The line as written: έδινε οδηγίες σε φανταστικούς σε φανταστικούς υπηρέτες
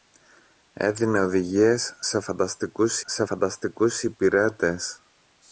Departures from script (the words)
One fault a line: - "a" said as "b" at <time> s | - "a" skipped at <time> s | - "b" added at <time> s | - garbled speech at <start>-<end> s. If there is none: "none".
none